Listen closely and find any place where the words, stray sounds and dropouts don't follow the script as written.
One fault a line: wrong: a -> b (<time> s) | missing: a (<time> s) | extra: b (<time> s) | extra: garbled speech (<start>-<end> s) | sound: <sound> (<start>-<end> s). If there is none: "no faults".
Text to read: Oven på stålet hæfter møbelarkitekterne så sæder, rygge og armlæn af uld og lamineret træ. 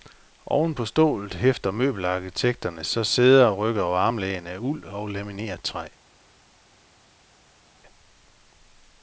no faults